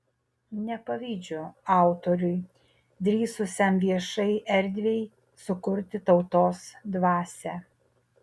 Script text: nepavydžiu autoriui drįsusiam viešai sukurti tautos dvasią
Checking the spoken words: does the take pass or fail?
fail